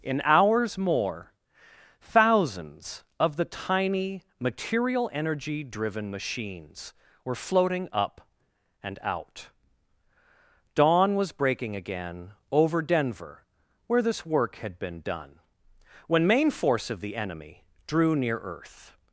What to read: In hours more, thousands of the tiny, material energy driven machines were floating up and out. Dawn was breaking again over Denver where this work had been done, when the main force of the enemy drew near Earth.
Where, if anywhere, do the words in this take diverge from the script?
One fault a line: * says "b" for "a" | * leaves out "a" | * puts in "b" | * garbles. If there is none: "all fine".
* leaves out "the"